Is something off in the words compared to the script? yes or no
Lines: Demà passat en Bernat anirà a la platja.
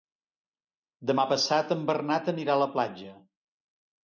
no